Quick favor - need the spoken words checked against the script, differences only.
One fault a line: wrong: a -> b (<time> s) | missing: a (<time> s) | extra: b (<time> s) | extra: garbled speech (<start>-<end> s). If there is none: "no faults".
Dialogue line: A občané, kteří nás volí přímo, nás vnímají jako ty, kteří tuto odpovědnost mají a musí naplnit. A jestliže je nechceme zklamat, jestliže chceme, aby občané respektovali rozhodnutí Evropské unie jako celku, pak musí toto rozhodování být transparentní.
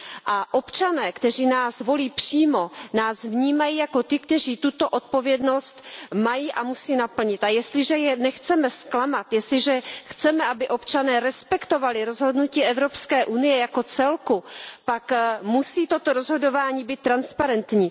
no faults